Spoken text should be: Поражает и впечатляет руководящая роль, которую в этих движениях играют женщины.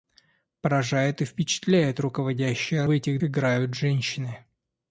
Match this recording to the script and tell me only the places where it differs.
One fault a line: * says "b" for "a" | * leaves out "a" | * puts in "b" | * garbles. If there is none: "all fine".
* leaves out "роль которую"
* leaves out "движениях"